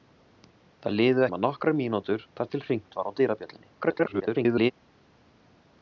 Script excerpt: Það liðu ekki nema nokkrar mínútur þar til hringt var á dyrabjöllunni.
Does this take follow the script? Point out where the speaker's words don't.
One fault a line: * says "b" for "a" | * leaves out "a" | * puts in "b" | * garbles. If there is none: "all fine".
* leaves out "ekki"
* garbles